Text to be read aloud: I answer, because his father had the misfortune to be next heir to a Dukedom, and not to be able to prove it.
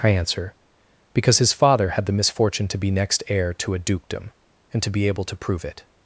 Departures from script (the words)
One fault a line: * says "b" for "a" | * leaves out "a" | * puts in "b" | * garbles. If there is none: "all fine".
* leaves out "not"